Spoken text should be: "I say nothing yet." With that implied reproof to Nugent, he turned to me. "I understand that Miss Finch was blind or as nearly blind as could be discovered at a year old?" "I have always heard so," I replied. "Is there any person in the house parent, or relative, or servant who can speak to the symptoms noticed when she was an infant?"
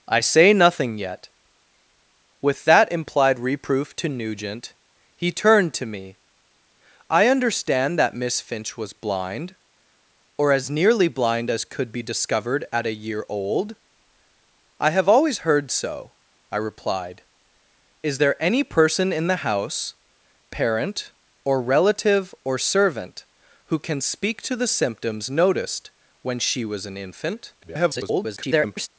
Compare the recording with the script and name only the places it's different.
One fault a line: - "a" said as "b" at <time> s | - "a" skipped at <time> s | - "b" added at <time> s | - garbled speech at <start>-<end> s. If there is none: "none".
- garbled speech at 27.6-28.9 s